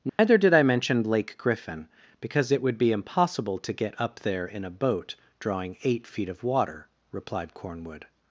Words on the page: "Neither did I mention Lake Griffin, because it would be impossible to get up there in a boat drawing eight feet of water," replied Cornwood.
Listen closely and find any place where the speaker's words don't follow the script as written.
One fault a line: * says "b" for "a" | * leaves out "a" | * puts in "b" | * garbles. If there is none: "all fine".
all fine